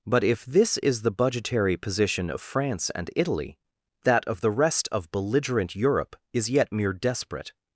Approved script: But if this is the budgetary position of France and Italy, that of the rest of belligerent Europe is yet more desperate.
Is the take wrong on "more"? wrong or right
wrong